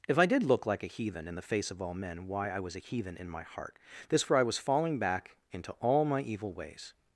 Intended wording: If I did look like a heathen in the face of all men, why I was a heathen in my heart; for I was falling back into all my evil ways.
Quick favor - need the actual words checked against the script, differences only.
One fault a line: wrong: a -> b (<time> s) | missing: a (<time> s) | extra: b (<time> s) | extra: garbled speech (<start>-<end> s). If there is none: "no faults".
extra: this (4.1 s)